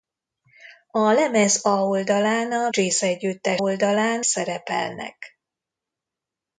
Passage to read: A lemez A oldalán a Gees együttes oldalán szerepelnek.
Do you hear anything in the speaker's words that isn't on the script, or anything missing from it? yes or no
no